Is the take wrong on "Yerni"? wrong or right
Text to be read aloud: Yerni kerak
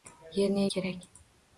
right